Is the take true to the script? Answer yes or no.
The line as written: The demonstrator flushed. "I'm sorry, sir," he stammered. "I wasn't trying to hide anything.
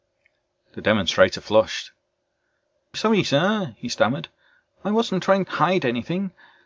no